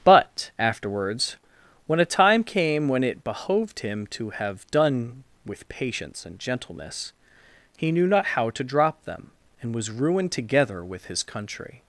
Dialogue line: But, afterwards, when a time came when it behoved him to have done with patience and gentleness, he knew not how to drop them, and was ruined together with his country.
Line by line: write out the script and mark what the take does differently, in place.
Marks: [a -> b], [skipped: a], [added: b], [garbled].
But, afterwards, when a time came when it behoved him to have done with patience and gentleness, he knew not how to drop them, and was ruined together with his country.